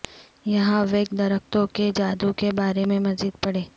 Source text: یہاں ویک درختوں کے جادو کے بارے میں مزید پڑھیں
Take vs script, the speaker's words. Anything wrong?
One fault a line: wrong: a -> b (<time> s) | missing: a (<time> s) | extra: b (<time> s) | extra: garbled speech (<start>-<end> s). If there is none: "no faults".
no faults